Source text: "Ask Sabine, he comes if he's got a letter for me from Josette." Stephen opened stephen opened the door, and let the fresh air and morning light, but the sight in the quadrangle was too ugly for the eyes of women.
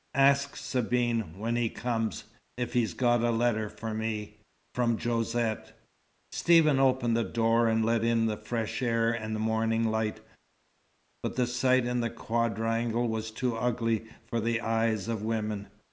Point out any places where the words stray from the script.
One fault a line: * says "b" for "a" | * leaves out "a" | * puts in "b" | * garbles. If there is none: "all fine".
* puts in "when"
* leaves out "stephen opened"
* puts in "in"